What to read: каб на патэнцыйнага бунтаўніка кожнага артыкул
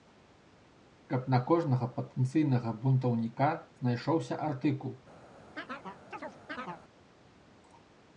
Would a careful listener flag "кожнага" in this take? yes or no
yes